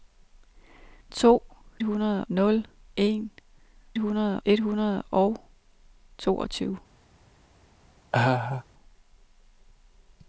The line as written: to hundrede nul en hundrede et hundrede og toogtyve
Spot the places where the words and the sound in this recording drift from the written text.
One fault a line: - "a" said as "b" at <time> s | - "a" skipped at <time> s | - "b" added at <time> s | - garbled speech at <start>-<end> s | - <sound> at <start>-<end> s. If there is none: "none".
- laugh at 8.1-8.6 s